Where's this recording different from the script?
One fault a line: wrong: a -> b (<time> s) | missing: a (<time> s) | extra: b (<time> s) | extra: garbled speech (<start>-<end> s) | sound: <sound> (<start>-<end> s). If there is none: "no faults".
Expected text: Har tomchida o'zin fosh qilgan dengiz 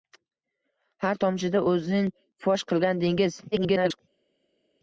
extra: garbled speech (3.5-4.0 s)